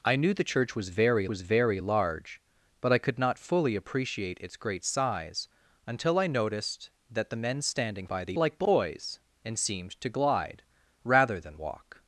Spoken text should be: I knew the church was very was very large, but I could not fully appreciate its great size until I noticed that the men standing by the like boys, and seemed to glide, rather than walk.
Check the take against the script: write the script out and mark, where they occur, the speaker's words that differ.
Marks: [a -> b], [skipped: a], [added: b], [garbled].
I knew the church was very was very large, but I could not fully appreciate its great size until I noticed that the men standing by the like boys, and seemed to glide, rather than walk.